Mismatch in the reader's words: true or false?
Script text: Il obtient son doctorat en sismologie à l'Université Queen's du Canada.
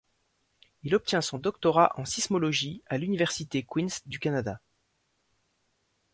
false